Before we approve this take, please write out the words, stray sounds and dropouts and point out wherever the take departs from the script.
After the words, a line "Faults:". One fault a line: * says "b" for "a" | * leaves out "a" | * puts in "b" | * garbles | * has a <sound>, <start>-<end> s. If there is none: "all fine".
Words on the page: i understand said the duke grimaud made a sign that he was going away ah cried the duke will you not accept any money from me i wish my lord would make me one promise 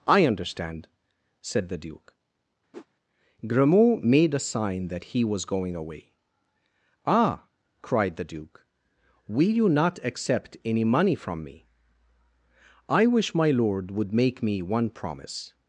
i understand said the duke grimaud made a sign that he was going away ah cried the duke will you not accept any money from me i wish my lord would make me one promise
Faults:
* has a whoosh, 2.7-2.9 s